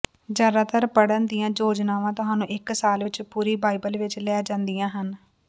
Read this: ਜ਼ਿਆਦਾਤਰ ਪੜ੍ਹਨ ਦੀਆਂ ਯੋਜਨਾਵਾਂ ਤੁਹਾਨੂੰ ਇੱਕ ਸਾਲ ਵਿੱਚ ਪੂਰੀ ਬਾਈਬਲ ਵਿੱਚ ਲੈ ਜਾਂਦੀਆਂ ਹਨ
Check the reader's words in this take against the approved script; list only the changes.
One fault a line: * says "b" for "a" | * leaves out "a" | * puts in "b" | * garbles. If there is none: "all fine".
all fine